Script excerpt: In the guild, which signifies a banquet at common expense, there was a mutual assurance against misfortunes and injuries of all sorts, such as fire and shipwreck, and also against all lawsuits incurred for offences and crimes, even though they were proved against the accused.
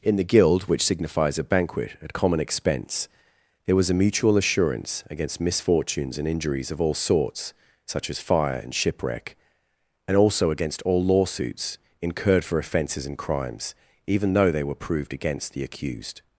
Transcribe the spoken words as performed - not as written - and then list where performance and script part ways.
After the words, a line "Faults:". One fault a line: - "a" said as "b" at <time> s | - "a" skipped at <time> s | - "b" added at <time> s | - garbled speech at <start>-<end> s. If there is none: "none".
In the guild, which signifies a banquet at common expense, there was a mutual assurance against misfortunes and injuries of all sorts, such as fire and shipwreck, and also against all lawsuits incurred for offences and crimes, even though they were proved against the accused.
Faults:
none